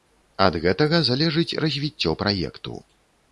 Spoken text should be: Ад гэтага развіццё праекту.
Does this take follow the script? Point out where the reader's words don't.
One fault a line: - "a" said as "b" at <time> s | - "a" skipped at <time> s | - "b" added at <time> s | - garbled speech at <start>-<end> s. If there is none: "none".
- "залежыць" added at 1.1 s